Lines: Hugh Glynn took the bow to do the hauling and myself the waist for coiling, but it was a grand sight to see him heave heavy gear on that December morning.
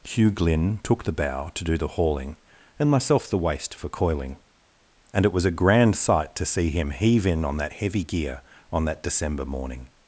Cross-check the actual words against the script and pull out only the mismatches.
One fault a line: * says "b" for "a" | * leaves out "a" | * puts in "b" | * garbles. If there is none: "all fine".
* says "and" for "but"
* puts in "in on that"